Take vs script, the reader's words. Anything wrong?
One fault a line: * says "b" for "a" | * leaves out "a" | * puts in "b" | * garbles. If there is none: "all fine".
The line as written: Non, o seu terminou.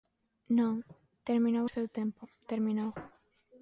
* puts in "terminou"
* puts in "tempo"